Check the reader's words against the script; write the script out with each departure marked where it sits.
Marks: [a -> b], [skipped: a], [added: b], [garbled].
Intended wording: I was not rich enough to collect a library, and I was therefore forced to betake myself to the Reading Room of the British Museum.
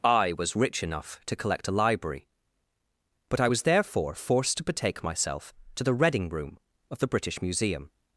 I was [skipped: not] rich enough to collect a library, [and -> but] I was therefore forced to betake myself to the Reading Room of the British Museum.